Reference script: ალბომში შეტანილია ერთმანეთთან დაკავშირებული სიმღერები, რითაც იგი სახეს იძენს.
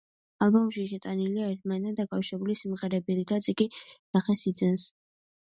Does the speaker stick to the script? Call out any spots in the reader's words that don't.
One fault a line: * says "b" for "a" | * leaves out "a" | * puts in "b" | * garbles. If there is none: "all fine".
all fine